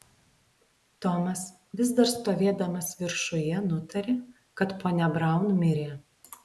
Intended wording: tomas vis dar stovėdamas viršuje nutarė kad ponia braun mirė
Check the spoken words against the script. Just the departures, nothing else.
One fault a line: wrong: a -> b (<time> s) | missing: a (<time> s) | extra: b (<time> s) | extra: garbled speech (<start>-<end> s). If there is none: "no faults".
no faults